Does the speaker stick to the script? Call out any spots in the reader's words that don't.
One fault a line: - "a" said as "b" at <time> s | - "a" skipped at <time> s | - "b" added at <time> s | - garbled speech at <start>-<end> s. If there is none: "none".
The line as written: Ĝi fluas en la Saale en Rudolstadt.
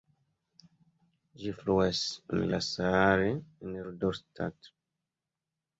none